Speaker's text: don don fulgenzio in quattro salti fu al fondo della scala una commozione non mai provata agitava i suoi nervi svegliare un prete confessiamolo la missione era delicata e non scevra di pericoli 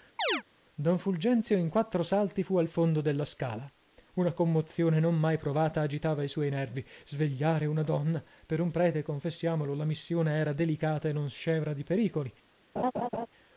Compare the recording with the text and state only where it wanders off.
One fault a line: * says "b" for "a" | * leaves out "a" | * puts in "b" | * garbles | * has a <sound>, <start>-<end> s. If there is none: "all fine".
* has a chirp, 0.2-0.4 s
* leaves out "don"
* puts in "una donna per"
* has a laugh, 12.8-13.3 s